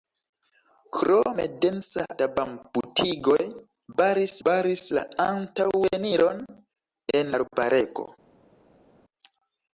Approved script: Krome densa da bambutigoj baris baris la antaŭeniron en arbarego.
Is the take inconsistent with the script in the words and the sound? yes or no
no